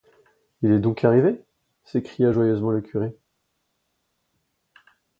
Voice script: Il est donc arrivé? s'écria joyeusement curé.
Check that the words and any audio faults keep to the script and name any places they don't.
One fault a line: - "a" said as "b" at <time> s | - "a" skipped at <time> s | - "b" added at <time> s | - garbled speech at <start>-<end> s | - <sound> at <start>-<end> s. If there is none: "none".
- "le" added at 2.7 s